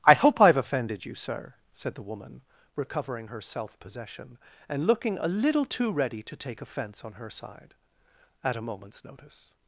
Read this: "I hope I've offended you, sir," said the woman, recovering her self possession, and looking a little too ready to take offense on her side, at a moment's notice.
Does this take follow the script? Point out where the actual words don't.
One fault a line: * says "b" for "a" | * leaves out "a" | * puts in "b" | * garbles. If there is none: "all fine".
all fine